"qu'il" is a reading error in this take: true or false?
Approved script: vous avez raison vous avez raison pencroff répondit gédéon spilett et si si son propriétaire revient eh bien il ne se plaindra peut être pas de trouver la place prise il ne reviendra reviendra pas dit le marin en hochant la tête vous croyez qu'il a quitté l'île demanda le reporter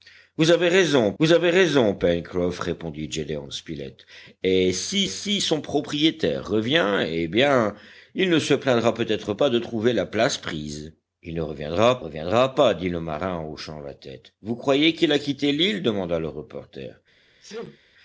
false